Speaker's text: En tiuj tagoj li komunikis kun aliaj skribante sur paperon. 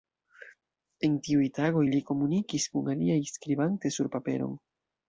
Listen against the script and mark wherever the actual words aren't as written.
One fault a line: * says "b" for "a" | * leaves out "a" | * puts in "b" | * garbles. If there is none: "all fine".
all fine